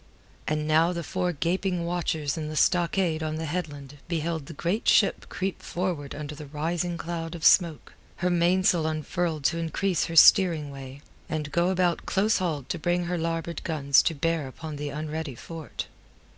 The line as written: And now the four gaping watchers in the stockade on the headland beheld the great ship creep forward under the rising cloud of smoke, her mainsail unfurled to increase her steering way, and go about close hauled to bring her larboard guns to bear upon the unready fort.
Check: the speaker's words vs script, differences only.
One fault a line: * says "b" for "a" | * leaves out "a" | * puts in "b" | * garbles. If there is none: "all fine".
all fine